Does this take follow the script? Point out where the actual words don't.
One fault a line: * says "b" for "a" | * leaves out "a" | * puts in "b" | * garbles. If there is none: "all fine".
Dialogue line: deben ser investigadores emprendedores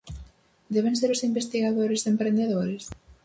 * puts in "os"